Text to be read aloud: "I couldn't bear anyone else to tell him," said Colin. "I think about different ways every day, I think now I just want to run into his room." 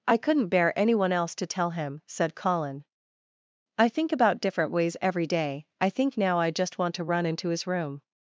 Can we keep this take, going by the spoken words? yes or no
yes